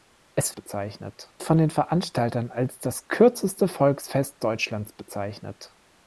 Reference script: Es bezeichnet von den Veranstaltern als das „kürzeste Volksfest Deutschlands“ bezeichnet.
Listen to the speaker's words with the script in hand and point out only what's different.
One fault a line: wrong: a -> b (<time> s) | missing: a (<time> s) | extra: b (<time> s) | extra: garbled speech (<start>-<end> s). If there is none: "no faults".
no faults